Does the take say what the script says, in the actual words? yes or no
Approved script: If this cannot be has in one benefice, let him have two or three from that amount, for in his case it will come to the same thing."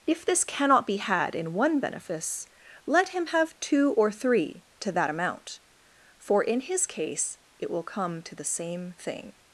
no